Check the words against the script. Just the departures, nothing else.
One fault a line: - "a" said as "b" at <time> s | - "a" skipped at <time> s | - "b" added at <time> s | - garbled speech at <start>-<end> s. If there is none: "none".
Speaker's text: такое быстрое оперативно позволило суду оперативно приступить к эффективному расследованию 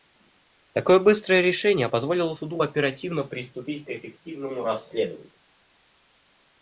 - "оперативно" said as "решение" at 1.4 s